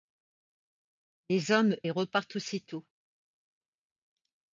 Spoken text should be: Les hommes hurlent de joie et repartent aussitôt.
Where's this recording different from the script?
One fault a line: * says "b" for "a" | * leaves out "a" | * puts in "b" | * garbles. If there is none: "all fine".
* leaves out "hurlent de joie"